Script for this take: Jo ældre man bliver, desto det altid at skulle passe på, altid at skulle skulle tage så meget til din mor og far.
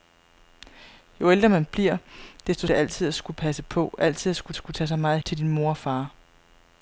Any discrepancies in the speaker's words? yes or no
no